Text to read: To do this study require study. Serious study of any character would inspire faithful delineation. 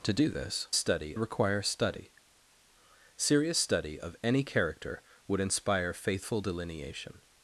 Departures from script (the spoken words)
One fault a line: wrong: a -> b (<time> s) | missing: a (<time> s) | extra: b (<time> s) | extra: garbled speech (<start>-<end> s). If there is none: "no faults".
no faults